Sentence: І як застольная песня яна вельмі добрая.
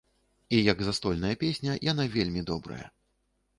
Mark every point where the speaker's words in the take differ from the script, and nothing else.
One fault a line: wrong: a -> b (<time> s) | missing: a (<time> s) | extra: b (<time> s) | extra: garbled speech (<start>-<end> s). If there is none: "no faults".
no faults